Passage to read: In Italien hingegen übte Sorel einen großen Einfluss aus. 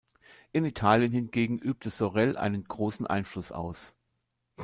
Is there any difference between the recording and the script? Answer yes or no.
no